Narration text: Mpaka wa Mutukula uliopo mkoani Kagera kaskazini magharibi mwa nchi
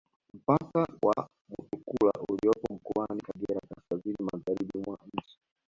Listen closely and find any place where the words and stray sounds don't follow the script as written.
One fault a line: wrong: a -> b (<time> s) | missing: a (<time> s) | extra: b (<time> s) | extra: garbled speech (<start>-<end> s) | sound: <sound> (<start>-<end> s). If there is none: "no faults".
no faults